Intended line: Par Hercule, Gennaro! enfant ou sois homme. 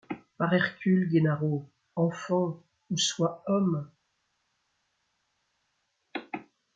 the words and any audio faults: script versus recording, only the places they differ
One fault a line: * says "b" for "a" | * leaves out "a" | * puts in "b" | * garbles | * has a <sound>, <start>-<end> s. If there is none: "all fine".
all fine